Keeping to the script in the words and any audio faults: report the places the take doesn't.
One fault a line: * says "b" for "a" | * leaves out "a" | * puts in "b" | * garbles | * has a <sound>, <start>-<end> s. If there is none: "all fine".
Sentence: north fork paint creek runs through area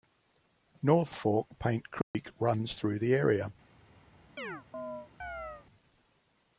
* has a dropout, 2.0-2.1 s
* puts in "the"
* has a chirp, 4.4-5.7 s